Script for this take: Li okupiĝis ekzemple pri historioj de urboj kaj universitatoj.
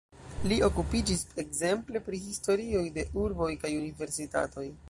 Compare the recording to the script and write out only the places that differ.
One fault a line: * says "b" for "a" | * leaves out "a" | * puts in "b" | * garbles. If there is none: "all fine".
all fine